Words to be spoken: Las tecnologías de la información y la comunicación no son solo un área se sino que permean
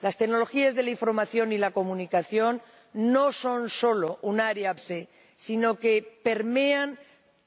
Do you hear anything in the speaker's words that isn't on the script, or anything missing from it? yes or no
no